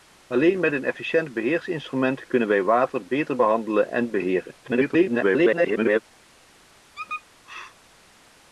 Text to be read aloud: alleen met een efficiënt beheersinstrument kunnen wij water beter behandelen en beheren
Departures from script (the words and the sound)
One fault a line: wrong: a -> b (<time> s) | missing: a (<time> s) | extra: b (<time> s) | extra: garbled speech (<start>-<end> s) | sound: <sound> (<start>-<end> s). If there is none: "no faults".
extra: garbled speech (4.6-6.0 s)
sound: squeak (6.9-7.2 s)